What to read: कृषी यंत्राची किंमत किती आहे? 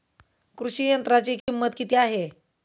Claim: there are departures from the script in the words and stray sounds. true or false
true